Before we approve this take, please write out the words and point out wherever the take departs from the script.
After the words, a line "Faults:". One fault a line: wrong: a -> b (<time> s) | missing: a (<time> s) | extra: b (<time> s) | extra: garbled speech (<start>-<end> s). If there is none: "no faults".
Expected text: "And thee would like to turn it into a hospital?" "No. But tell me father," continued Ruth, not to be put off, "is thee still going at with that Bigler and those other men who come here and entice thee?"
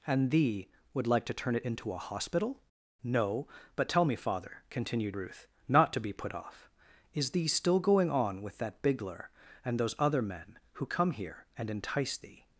"And thee would like to turn it into a hospital?" "No. But tell me father," continued Ruth, not to be put off, "is thee still going on with that Bigler and those other men who come here and entice thee?"
Faults:
wrong: at -> on (8.1 s)